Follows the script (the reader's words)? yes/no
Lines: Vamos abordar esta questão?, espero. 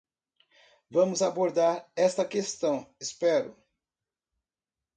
yes